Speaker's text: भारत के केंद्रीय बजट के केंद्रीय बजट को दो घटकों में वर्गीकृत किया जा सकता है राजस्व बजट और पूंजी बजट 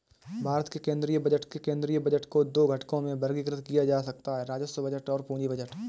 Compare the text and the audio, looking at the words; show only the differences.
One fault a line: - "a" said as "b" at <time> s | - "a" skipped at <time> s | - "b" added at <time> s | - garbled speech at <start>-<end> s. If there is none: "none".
none